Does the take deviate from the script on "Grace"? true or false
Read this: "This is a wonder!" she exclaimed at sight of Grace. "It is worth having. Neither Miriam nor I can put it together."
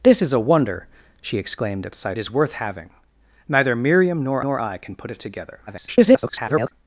true